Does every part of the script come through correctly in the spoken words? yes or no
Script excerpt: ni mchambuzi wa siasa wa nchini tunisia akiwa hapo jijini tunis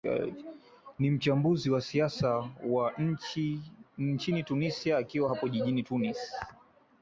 yes